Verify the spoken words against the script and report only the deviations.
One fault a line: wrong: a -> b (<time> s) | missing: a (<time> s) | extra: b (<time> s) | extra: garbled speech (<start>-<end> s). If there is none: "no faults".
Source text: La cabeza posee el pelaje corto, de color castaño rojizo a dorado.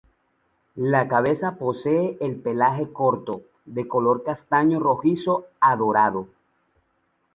no faults